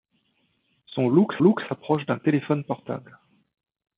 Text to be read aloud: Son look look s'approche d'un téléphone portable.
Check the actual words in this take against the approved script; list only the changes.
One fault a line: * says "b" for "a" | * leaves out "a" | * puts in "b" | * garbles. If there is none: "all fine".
all fine